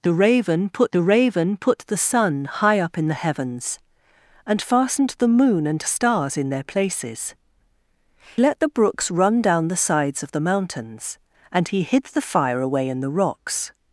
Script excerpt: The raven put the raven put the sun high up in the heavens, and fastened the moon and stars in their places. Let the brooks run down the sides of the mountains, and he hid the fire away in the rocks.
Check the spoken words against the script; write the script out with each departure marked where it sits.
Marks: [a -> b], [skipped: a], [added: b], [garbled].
The raven put the raven put the sun high up in the heavens, and fastened the moon and stars in their places. Let the brooks run down the sides of the mountains, and he hid the fire away in the rocks.